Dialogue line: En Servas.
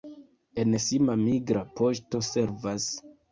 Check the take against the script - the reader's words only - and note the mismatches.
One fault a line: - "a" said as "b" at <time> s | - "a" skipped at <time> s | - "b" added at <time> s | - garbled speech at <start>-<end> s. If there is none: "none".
- "Sima migra poŝto" added at 0.8 s